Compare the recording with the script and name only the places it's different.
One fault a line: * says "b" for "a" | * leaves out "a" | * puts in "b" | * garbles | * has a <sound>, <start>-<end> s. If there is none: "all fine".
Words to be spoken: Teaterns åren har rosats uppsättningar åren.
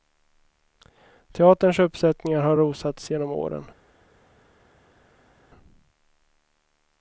* says "uppsättningar" for "åren"
* says "genom" for "uppsättningar"